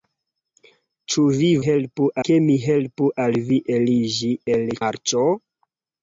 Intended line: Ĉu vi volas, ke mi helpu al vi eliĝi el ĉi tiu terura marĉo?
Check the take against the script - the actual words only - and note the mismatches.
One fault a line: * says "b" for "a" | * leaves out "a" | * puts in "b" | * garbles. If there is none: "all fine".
* says "helpu" for "volas"
* leaves out "ĉi tiu terura"